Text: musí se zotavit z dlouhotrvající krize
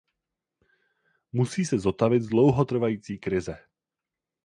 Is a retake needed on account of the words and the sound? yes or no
no